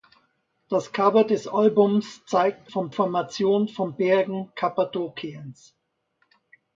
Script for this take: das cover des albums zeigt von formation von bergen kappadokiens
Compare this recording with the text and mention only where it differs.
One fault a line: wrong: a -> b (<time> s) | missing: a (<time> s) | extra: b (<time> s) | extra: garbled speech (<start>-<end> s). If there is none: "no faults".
no faults